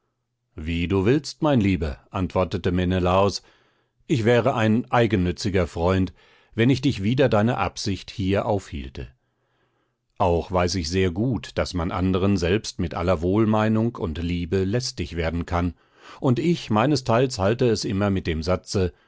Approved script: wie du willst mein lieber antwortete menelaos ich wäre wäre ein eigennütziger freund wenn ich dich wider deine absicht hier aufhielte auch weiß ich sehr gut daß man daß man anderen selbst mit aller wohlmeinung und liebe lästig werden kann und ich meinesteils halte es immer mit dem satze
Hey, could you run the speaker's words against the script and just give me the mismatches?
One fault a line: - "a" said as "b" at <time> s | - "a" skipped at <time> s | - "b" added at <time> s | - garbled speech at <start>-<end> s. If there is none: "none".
- "wäre" skipped at 4.5 s
- "daß man" skipped at 11.9 s